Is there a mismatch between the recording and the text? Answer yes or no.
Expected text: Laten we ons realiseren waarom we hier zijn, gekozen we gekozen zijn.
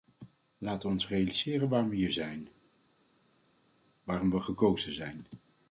yes